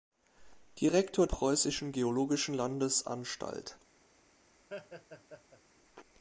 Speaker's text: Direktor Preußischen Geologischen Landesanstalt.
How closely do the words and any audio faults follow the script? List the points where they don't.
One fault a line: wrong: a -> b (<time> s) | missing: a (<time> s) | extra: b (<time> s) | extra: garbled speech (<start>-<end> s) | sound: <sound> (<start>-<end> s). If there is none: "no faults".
sound: laugh (4.7-5.6 s)